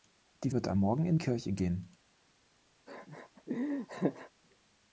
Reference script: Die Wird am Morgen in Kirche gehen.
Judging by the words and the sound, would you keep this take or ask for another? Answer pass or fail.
fail